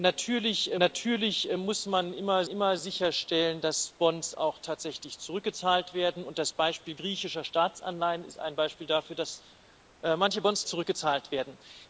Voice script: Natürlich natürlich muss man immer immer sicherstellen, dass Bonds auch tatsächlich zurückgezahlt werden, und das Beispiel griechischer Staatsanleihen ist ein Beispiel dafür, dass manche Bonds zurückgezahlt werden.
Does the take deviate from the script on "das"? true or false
false